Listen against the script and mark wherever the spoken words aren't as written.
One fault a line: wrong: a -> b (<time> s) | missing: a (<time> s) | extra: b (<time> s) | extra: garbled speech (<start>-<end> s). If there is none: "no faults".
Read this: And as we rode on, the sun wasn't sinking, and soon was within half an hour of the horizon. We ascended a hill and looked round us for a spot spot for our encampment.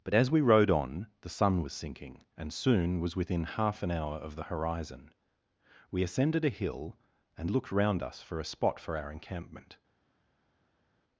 wrong: And -> But (0.0 s)
wrong: wasn't -> was (1.6 s)
missing: spot (8.8 s)